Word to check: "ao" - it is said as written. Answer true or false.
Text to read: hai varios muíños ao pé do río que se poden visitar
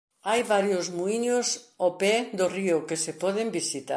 true